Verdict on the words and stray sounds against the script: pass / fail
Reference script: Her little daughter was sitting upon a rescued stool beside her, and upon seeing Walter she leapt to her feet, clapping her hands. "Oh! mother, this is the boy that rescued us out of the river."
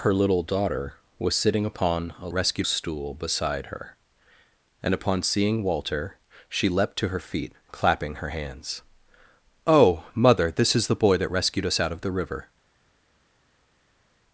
pass